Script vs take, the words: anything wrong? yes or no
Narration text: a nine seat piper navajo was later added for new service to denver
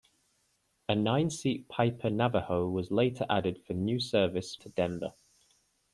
no